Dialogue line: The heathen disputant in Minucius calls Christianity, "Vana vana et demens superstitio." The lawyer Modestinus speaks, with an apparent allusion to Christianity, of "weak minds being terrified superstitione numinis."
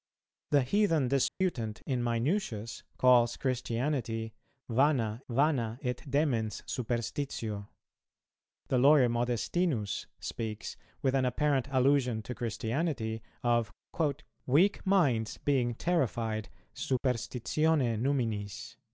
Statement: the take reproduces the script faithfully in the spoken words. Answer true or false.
true